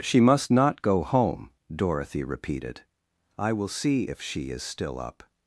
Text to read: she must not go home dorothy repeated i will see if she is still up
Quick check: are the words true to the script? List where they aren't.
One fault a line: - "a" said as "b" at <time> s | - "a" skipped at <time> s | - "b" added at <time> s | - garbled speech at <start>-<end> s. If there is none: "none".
none